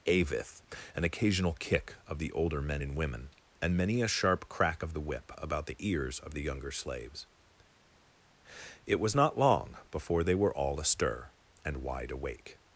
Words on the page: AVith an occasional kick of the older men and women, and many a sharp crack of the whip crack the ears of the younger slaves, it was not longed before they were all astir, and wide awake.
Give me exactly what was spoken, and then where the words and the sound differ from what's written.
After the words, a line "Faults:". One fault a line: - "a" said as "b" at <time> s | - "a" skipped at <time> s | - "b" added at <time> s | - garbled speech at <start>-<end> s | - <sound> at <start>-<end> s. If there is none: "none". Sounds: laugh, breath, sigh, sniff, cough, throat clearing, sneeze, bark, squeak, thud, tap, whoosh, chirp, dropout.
AVith an occasional kick of the older men and women, and many a sharp crack of the whip about the ears of the younger slaves, it was not long before they were all astir, and wide awake.
Faults:
- "crack" said as "about" at 5.4 s
- "longed" said as "long" at 9.4 s